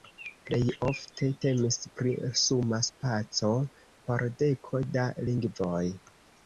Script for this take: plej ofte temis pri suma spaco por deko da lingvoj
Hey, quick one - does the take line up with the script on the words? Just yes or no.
yes